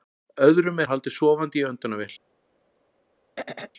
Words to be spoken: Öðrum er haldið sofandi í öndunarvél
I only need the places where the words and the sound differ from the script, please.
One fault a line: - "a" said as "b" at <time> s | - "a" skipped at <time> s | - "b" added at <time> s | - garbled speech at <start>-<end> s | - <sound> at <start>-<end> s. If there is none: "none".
- throat clearing at 3.4-3.7 s